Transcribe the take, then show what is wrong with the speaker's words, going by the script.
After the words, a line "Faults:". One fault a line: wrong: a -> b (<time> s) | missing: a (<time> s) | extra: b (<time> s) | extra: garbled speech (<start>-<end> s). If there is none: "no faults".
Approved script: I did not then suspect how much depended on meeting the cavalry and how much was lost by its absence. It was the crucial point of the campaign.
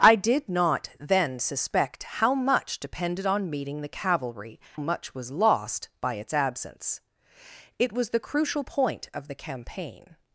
I did not then suspect how much depended on meeting the cavalry much was lost by its absence. It was the crucial point of the campaign.
Faults:
missing: and how (4.6 s)